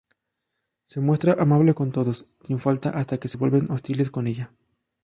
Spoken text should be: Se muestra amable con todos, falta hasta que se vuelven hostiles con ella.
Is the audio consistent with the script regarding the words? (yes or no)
no